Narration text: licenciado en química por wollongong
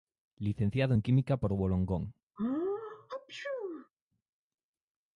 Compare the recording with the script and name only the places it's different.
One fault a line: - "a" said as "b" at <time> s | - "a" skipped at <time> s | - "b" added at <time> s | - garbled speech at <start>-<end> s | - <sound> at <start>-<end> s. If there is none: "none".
- sneeze at 2.4-3.9 s